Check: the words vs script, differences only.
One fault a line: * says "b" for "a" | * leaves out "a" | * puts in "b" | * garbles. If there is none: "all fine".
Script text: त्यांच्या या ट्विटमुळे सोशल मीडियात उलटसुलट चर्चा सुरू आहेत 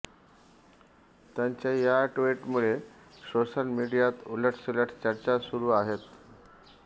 all fine